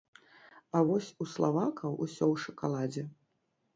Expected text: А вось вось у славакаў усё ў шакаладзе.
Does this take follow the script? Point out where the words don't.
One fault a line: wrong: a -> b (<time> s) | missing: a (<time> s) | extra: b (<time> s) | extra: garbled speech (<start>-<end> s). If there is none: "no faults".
missing: вось (1.1 s)